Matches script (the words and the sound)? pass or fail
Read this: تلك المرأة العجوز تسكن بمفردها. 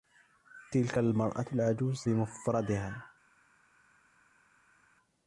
fail